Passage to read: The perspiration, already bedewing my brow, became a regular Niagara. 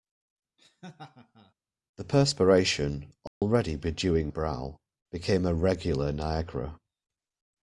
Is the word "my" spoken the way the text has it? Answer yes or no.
no